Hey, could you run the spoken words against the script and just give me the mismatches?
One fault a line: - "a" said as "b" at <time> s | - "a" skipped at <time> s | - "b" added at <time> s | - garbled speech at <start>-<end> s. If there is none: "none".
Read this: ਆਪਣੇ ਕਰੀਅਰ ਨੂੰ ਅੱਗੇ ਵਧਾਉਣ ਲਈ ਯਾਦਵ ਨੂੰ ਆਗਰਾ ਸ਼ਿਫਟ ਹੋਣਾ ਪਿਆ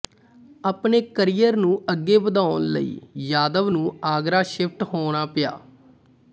none